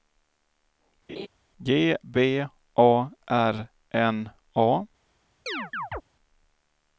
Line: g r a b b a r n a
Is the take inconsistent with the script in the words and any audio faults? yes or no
yes